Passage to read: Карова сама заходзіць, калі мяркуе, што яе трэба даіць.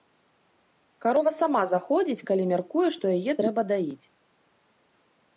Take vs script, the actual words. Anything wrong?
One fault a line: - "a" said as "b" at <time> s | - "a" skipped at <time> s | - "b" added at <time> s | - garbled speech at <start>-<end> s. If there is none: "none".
none